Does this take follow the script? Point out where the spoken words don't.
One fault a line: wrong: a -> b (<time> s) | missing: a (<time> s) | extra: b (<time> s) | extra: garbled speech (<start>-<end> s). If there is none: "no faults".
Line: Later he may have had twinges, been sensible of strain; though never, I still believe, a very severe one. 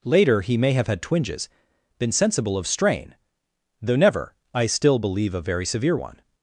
no faults